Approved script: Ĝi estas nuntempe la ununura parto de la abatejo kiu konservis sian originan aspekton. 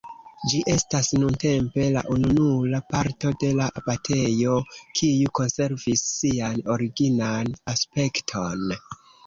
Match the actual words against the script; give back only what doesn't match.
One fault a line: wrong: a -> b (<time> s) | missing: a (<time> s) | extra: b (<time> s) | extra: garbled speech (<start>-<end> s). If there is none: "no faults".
no faults